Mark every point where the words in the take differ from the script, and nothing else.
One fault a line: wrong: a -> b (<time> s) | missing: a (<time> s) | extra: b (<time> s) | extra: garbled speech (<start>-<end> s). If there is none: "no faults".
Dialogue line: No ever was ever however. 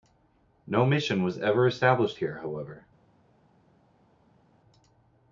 wrong: ever -> mission (0.9 s)
extra: established here (1.7 s)